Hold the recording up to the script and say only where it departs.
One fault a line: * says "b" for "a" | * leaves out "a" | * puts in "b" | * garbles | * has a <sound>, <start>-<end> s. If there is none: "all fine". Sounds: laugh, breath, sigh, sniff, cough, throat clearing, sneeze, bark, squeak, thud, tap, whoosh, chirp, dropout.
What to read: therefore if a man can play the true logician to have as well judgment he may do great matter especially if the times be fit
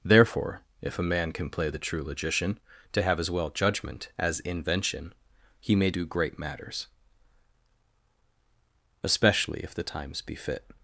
* puts in "as invention"
* says "matters" for "matter"